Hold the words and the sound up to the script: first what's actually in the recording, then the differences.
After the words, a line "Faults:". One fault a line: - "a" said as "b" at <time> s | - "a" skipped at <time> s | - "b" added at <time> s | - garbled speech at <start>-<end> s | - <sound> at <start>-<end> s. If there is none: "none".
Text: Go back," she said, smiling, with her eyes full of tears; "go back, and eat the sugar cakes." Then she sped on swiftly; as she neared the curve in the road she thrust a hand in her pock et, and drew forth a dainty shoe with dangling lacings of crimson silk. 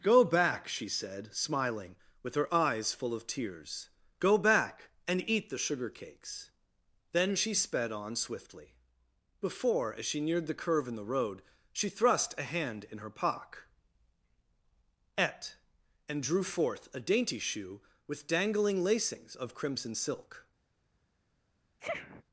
Go back," she said, smiling, with her eyes full of tears; "go back, and eat the sugar cakes." Then she sped on swiftly; before as she neared the curve in the road she thrust a hand in her pock et, and drew forth a dainty shoe with dangling lacings of crimson silk.
Faults:
- "before" added at 9.4 s
- sniff at 21.8-22.2 s